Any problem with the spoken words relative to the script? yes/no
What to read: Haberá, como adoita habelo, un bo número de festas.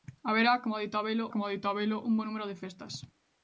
yes